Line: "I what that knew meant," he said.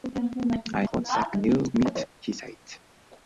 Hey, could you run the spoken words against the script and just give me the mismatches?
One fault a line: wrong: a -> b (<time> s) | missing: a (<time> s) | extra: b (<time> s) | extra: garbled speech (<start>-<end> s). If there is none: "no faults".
no faults